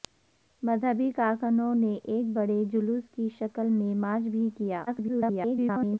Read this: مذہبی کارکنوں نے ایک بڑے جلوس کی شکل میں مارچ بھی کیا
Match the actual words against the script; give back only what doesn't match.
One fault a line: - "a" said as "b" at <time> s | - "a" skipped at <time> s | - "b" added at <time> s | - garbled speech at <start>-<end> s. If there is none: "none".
- garbled speech at 4.9-6.0 s